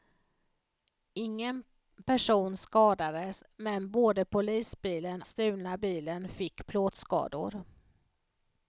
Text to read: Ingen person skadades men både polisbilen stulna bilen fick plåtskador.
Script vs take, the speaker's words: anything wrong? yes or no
no